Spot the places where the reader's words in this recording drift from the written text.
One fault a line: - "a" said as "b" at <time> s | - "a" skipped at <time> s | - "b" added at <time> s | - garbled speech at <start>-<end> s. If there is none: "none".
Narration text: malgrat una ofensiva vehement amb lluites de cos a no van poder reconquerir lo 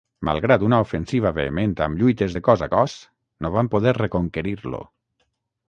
- "cos" added at 2.7 s